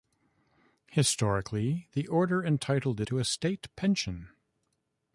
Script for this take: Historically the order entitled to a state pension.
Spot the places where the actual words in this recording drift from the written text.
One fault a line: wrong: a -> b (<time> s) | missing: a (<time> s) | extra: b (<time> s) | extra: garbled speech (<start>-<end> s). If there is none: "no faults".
no faults